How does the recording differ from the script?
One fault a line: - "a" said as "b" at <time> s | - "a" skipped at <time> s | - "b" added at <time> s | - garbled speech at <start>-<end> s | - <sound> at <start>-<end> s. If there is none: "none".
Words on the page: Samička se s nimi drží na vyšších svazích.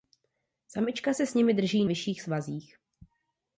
- "na" skipped at 1.9 s